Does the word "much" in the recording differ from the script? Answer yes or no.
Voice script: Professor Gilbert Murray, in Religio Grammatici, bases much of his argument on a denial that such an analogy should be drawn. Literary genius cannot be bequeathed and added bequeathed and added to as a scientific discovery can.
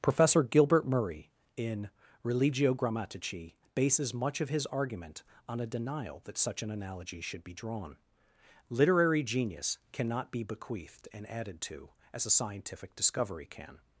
no